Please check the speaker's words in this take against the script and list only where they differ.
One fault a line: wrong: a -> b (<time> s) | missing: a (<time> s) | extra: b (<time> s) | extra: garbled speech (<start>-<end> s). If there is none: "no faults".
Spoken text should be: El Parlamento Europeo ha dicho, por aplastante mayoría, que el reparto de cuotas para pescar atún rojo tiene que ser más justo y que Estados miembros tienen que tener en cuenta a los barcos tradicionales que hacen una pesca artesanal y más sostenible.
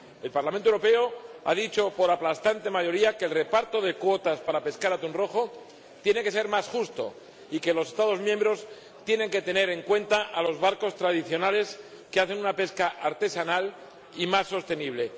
extra: los (7.7 s)